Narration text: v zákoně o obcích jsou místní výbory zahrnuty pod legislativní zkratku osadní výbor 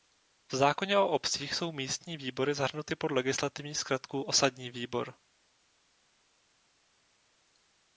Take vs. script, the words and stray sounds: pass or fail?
pass